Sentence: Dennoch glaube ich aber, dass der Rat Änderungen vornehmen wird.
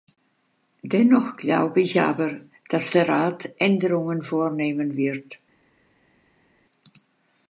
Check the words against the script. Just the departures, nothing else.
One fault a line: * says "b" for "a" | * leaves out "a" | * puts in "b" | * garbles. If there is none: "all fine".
all fine